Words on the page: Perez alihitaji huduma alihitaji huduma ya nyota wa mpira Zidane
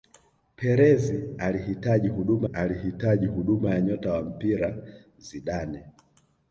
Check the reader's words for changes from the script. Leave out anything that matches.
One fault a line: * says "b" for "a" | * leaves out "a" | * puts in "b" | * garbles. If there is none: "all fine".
all fine